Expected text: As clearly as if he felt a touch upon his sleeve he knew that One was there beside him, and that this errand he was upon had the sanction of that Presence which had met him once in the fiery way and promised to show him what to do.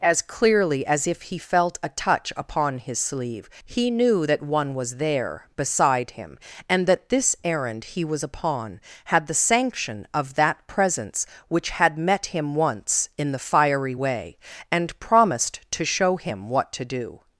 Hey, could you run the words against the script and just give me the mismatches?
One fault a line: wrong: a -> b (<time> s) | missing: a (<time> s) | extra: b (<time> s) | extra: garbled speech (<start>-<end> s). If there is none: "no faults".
no faults